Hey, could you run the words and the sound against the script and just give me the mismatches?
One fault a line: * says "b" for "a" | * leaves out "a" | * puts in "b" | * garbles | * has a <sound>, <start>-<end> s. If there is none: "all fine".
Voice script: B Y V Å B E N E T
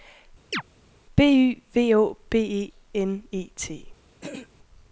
* has a chirp, 0.5-0.6 s
* has a throat clearing, 4.2-4.5 s